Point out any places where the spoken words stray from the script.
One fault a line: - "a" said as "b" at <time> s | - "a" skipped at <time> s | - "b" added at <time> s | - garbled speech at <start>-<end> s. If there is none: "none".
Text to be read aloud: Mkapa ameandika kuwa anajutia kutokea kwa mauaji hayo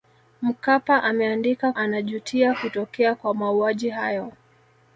- "kuwa" skipped at 1.7 s